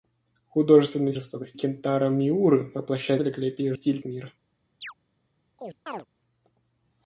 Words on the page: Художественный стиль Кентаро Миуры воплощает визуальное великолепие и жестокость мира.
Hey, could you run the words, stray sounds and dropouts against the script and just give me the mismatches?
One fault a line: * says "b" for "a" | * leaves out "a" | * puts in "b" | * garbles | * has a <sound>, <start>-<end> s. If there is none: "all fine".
* says "жестокость" for "стиль"
* leaves out "визуальное"
* says "стиль" for "жестокость"
* has a chirp, 4.8-4.9 s
* has a chirp, 5.6-6.1 s